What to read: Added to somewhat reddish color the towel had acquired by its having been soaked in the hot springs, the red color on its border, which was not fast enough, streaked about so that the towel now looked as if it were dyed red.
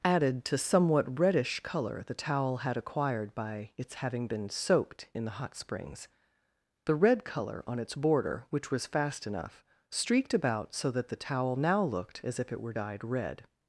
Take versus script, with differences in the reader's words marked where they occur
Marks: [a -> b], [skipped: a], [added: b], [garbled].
Added to somewhat reddish color the towel had acquired by its having been soaked in the hot springs, the red color on its border, which was [skipped: not] fast enough, streaked about so that the towel now looked as if it were dyed red.